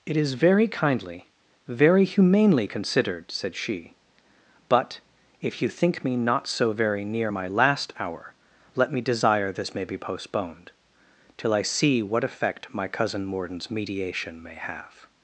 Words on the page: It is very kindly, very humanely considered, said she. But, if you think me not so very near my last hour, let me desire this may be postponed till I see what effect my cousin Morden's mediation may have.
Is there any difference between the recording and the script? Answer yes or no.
no